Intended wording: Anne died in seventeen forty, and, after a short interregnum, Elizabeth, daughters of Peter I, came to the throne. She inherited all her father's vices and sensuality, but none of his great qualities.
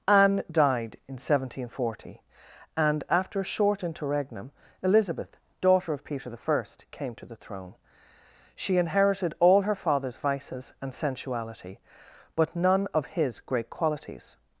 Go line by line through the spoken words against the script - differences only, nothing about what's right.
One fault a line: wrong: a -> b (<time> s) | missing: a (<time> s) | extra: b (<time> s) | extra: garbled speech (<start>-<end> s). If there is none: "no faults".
wrong: daughters -> daughter (5.6 s)